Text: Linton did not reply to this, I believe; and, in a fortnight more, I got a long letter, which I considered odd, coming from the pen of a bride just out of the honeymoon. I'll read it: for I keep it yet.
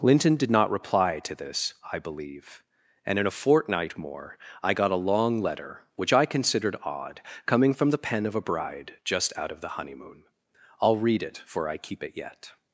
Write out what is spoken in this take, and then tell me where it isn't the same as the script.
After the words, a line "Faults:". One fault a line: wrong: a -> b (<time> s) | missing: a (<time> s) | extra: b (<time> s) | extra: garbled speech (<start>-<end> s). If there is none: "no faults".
Linton did not reply to this, I believe; and, in a fortnight more, I got a long letter, which I considered odd, coming from the pen of a bride just out of the honeymoon. I'll read it: for I keep it yet.
Faults:
no faults